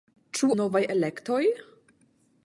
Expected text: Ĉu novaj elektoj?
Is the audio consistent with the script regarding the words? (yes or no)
yes